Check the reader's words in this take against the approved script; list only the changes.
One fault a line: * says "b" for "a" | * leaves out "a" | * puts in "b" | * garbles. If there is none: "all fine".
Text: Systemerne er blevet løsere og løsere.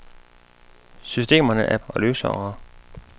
* leaves out "blevet løsere"